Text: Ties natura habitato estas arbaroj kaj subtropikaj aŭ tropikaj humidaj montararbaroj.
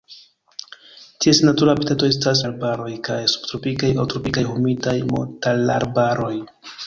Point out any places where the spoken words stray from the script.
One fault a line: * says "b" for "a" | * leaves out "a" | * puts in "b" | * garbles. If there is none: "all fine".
all fine